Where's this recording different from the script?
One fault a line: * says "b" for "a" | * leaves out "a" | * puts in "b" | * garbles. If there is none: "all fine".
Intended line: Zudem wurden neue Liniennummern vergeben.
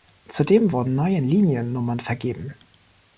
all fine